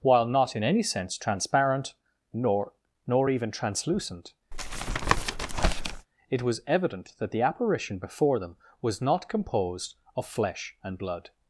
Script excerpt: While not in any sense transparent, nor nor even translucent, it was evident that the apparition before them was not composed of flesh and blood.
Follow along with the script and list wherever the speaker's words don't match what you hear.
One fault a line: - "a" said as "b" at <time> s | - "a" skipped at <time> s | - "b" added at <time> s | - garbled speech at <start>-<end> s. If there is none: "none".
none